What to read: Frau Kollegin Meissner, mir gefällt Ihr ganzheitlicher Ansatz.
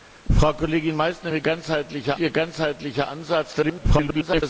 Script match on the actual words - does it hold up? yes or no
no